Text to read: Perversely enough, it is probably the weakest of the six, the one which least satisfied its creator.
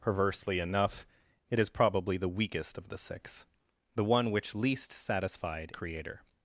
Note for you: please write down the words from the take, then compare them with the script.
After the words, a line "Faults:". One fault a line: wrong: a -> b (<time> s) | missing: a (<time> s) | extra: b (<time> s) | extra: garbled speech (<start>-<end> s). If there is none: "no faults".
Perversely enough, it is probably the weakest of the six, the one which least satisfied creator.
Faults:
missing: its (5.7 s)